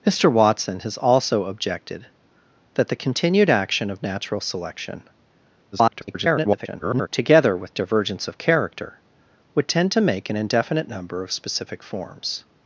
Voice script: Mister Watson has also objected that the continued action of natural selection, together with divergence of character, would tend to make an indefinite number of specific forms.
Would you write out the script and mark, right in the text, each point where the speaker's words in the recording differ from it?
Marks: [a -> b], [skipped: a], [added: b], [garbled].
Mister Watson has also objected that the continued action of natural selection, [garbled] together with divergence of character, would tend to make an indefinite number of specific forms.